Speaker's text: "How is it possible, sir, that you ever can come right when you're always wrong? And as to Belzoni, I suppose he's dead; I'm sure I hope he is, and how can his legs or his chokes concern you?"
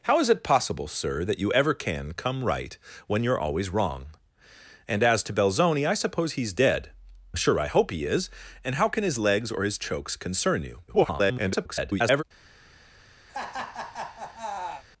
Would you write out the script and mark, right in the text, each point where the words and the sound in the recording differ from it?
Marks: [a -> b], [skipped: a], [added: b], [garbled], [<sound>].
"How is it possible, sir, that you ever can come right when you're always wrong? And as to Belzoni, I suppose he's dead; [skipped: I'm] sure I hope he is, and how can his legs or his chokes concern you?" [garbled] [laugh]